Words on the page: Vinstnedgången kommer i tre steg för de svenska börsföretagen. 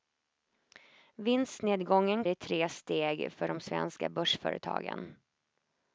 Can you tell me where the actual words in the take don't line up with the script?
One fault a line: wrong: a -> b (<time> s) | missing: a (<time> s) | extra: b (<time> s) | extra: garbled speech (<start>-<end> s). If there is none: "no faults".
missing: kommer (2.2 s)